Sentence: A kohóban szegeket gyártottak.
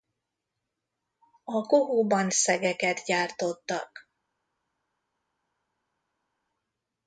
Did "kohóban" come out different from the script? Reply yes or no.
no